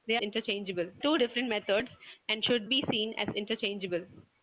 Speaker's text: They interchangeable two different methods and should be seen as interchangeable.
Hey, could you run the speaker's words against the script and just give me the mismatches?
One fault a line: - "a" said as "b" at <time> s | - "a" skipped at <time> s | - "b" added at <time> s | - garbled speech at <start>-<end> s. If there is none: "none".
none